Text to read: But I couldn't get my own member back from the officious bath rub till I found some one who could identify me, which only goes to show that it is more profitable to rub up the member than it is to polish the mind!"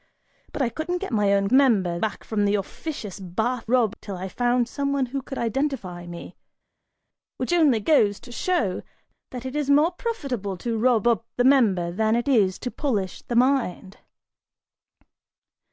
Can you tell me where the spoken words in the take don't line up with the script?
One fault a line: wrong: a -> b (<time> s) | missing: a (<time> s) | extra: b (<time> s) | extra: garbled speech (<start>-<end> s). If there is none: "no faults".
no faults